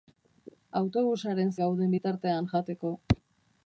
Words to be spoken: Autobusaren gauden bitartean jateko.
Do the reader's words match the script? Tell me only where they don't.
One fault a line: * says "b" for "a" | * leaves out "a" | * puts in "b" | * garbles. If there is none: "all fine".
all fine